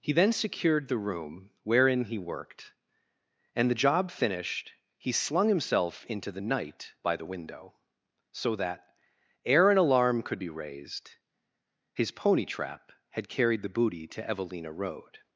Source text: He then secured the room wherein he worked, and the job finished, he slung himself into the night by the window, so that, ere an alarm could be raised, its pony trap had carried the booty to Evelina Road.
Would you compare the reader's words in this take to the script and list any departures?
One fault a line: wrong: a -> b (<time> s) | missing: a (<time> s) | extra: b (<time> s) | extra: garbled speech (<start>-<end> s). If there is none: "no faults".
wrong: its -> his (11.9 s)